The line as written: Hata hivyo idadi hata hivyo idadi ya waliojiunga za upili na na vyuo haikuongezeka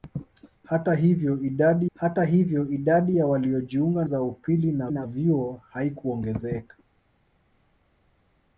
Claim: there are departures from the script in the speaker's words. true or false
false